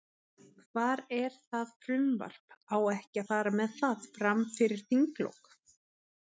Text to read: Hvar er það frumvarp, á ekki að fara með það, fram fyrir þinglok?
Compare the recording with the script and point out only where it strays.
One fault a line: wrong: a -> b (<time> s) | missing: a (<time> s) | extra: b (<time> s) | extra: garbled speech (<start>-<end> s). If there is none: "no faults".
no faults